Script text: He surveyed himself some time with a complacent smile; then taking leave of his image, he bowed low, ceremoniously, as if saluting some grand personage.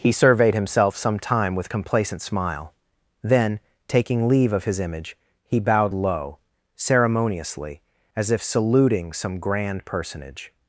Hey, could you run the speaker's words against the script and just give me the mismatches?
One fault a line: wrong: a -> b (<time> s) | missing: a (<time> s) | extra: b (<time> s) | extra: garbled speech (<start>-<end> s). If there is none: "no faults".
missing: a (1.7 s)